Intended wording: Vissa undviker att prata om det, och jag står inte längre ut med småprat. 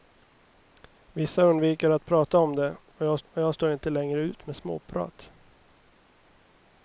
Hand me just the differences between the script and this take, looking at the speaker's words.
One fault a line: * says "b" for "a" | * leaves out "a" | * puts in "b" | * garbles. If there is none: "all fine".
* puts in "och jag"